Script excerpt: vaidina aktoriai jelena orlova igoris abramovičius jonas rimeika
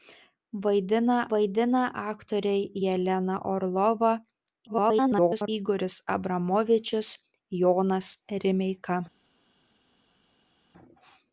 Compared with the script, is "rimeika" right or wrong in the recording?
right